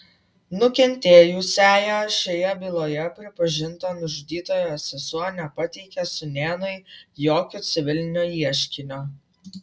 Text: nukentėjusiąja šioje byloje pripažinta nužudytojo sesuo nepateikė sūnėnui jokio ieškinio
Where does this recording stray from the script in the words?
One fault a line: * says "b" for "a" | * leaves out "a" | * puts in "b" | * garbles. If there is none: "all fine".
* puts in "civilinio"